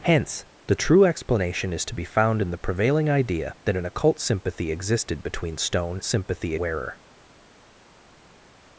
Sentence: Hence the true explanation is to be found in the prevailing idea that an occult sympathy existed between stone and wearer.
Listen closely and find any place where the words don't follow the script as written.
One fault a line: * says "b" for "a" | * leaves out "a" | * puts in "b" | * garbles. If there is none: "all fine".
* says "sympathy" for "and"